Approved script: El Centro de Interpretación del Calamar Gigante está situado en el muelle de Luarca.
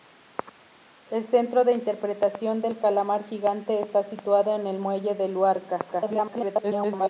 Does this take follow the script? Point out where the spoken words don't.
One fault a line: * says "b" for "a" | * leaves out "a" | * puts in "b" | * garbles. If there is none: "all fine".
* garbles